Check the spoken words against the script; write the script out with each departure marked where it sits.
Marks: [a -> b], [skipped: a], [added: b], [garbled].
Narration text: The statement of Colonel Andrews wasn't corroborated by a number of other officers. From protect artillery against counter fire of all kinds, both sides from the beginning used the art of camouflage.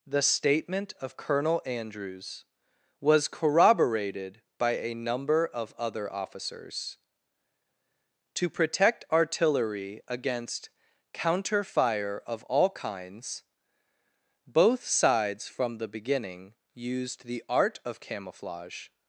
The statement of Colonel Andrews [wasn't -> was] corroborated by a number of other officers. [From -> To] protect artillery against counter fire of all kinds, both sides from the beginning used the art of camouflage.